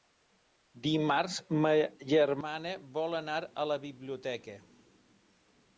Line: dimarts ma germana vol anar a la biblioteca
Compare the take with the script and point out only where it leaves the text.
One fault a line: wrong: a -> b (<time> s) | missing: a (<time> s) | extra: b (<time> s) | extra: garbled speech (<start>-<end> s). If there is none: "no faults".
no faults